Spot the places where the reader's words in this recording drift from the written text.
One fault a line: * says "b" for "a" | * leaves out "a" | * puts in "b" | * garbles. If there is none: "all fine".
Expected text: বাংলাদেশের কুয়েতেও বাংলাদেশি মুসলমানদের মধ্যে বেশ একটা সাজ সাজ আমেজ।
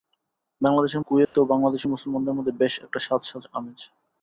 all fine